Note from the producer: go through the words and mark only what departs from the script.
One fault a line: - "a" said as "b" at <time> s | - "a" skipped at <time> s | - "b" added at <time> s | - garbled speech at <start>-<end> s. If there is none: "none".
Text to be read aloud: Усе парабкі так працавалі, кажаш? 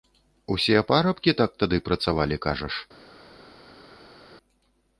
- "тады" added at 1.6 s